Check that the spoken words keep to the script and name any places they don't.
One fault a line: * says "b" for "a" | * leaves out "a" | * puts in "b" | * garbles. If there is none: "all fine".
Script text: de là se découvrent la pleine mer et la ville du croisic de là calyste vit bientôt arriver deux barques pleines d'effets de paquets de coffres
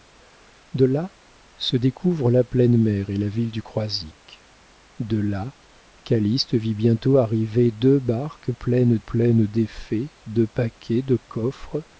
* puts in "pleines"